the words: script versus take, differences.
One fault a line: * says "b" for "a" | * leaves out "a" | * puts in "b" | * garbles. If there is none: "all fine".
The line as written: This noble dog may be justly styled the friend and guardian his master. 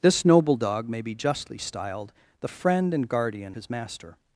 all fine